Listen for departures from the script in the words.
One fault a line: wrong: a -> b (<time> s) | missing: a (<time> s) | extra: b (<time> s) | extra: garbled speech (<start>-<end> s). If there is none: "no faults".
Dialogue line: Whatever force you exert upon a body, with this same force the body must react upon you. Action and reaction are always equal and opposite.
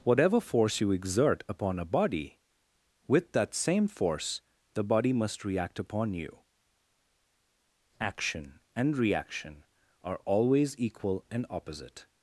wrong: this -> that (3.3 s)